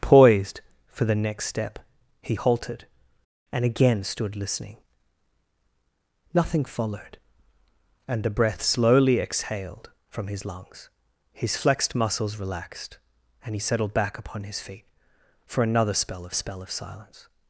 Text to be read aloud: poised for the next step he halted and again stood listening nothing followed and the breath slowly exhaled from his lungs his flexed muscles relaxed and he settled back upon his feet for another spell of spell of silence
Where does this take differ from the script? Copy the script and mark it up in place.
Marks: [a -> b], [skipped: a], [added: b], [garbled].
poised for the next step he halted and again stood listening nothing followed and the breath slowly exhaled from his lungs his flexed muscles relaxed and he settled back upon his feet for another spell of spell of silence